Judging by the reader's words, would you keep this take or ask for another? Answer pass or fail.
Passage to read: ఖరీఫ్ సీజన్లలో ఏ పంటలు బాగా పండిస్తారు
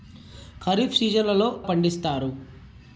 fail